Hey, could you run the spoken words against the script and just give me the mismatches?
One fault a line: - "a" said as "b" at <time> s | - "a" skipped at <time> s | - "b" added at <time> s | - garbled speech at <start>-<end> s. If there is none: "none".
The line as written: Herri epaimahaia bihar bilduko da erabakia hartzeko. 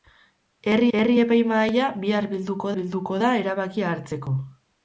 - "herri" added at 1.0 s
- "bilduko" added at 2.8 s